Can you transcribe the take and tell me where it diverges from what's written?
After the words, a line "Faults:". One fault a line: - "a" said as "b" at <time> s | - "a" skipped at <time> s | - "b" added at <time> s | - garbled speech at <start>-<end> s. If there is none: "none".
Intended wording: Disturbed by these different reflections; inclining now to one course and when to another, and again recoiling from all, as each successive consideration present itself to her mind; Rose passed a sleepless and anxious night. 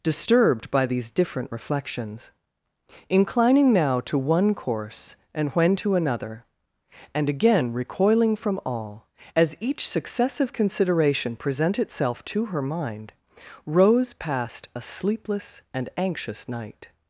Disturbed by these different reflections; inclining now to one course and when to another, and again recoiling from all, as each successive consideration present itself to her mind; Rose passed a sleepless and anxious night.
Faults:
none